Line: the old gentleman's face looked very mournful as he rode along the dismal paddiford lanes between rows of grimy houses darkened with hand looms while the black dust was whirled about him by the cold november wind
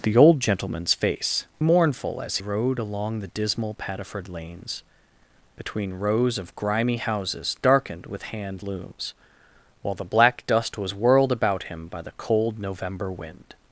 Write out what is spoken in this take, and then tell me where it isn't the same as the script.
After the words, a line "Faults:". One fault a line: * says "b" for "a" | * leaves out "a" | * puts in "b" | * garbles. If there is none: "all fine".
the old gentleman's face mournful as rode along the dismal paddiford lanes between rows of grimy houses darkened with hand looms while the black dust was whirled about him by the cold november wind
Faults:
* leaves out "looked very"
* leaves out "he"